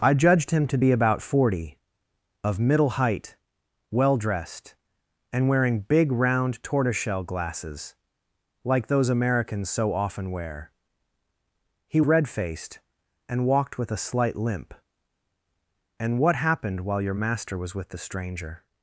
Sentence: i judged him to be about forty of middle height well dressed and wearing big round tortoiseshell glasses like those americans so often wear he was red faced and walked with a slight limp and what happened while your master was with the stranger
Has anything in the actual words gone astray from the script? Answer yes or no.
yes